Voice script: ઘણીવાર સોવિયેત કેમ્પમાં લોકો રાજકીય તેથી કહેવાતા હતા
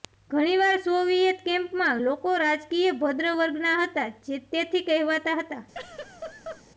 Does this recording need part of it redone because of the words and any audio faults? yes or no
yes